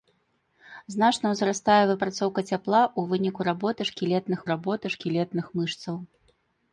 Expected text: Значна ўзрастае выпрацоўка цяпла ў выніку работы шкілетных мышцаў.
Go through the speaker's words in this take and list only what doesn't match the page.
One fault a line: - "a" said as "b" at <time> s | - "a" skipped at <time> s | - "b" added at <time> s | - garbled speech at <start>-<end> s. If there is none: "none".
- "работы шкілетных" added at 4.5 s